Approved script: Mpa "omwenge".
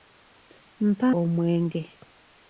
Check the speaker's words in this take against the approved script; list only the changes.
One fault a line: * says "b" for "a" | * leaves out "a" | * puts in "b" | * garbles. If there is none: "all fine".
all fine